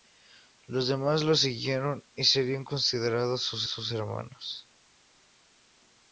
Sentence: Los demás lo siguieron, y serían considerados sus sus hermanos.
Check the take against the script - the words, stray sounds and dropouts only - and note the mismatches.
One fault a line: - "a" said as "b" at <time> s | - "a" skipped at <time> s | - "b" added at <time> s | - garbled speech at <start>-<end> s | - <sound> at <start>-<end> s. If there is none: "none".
none